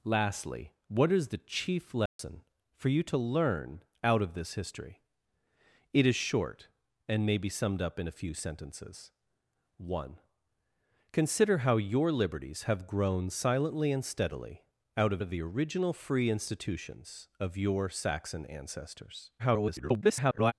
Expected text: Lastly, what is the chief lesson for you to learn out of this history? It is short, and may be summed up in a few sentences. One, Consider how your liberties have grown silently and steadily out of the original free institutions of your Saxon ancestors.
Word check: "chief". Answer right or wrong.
right